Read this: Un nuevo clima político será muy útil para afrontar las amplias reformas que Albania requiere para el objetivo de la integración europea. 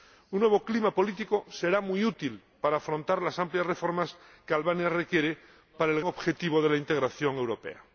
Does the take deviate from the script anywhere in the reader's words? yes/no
no